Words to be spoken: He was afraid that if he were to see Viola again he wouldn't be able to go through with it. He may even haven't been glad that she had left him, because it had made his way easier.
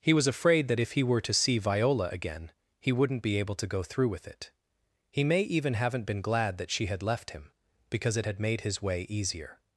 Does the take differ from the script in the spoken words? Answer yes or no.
no